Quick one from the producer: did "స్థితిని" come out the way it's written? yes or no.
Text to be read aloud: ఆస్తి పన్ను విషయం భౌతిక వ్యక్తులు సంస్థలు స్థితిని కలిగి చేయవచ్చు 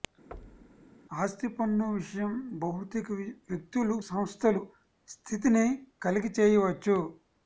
yes